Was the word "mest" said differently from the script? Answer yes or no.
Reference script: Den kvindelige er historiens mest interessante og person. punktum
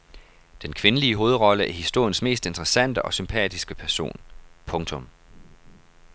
no